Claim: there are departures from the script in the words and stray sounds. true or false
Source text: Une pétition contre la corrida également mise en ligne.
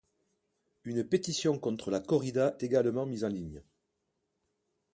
false